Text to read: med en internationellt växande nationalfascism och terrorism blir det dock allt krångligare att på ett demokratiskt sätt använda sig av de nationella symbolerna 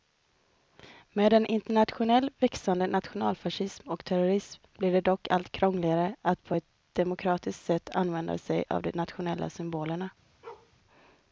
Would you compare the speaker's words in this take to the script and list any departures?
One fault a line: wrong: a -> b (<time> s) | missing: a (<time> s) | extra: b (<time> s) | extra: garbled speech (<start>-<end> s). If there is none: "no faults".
no faults